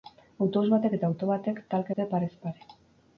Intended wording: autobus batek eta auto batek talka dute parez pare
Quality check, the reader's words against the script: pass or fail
pass